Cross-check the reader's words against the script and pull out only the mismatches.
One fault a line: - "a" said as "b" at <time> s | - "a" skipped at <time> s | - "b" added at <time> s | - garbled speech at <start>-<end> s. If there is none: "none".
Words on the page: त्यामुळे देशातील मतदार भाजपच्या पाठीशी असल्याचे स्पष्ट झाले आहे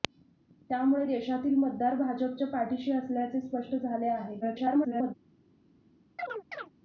- garbled speech at 4.4-5.1 s